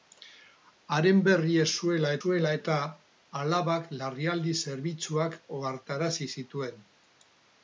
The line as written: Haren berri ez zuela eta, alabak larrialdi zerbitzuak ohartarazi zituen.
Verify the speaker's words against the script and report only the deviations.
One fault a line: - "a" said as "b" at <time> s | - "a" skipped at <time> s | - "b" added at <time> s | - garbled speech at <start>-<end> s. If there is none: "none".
- "zuela" added at 2.2 s